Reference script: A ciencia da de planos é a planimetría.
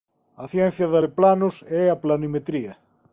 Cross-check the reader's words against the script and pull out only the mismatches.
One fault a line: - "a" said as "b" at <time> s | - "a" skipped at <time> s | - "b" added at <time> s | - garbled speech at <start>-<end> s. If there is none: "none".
none